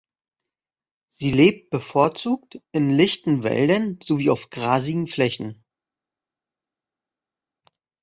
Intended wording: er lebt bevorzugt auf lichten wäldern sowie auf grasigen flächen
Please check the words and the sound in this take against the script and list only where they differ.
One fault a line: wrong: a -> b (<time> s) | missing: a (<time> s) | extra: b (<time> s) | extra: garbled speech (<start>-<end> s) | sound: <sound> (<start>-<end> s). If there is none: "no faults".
wrong: er -> sie (1.1 s)
wrong: auf -> in (2.7 s)